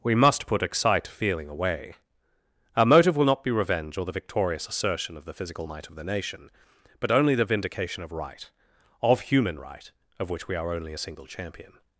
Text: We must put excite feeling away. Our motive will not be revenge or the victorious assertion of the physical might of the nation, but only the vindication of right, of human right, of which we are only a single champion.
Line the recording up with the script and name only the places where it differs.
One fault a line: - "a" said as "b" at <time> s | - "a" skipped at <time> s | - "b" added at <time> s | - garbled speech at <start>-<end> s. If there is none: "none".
none